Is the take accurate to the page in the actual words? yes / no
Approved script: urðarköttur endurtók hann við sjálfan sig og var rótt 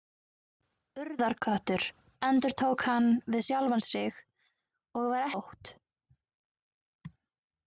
yes